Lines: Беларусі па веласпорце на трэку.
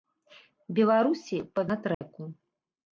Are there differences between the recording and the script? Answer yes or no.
yes